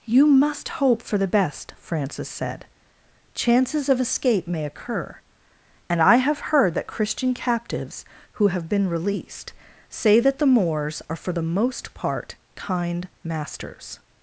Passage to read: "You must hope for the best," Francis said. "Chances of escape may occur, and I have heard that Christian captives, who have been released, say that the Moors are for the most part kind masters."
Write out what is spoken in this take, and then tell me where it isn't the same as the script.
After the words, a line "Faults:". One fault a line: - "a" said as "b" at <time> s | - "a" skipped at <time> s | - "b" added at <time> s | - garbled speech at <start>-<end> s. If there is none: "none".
"You must hope for the best," Francis said. "Chances of escape may occur, and I have heard that Christian captives, who have been released, say that the Moors are for the most part kind masters."
Faults:
none